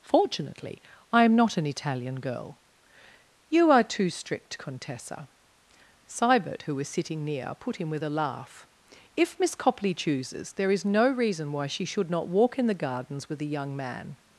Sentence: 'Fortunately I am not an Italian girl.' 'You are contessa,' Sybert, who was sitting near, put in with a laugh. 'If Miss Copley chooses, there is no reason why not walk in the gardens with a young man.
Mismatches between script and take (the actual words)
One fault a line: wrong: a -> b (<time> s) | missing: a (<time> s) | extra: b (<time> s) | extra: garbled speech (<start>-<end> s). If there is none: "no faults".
extra: too strict (3.8 s)
extra: she should (11.7 s)